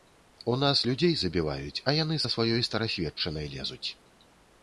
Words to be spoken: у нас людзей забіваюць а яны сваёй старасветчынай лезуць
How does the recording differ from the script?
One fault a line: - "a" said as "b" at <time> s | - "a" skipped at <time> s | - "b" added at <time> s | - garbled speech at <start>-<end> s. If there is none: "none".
- "са" added at 2.2 s